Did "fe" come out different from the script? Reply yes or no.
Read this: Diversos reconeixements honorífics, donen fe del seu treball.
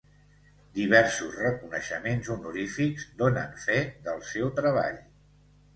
no